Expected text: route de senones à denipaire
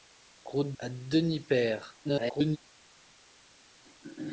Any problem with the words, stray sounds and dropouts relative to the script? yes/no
yes